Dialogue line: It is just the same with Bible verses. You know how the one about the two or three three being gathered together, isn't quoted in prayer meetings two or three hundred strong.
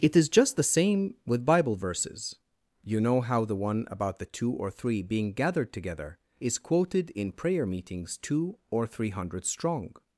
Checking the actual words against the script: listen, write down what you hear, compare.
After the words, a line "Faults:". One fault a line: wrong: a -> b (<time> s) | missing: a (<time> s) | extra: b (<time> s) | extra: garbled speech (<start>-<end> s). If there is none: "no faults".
It is just the same with Bible verses. You know how the one about the two or three being gathered together, is quoted in prayer meetings two or three hundred strong.
Faults:
missing: three (5.0 s)
wrong: isn't -> is (6.4 s)